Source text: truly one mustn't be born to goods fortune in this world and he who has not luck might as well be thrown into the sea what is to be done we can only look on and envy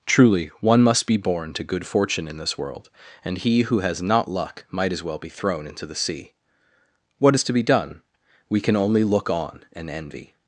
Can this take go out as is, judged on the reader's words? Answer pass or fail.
fail